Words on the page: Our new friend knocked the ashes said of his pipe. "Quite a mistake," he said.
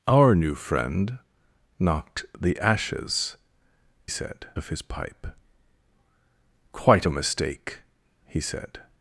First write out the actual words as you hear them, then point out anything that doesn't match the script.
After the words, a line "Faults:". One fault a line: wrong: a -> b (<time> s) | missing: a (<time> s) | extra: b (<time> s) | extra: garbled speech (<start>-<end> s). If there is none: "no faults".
Our new friend knocked the ashes said of his pipe. "Quite a mistake," he said.
Faults:
no faults